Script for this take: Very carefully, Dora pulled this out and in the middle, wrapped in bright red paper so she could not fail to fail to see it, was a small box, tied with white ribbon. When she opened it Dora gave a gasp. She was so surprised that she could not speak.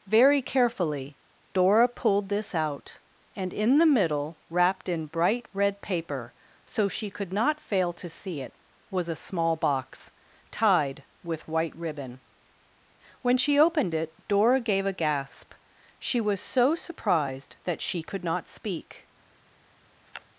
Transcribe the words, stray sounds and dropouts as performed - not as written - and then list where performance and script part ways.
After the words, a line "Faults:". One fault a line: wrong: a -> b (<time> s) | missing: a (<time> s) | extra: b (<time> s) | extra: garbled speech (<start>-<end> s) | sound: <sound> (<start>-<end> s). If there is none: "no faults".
Very carefully, Dora pulled this out and in the middle, wrapped in bright red paper so she could not fail to see it, was a small box, tied with white ribbon. When she opened it Dora gave a gasp. She was so surprised that she could not speak.
Faults:
missing: fail to (8.1 s)
sound: sniff (20.1-20.3 s)